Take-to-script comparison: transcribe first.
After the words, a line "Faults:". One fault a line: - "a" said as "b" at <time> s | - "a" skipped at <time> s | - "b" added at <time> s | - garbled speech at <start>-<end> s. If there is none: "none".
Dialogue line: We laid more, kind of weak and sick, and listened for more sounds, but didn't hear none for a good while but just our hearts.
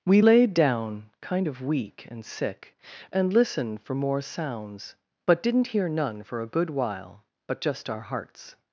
We laid down, kind of weak and sick, and listened for more sounds, but didn't hear none for a good while but just our hearts.
Faults:
- "more" said as "down" at 0.5 s